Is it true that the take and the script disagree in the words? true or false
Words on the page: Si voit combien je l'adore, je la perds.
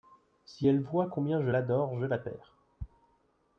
true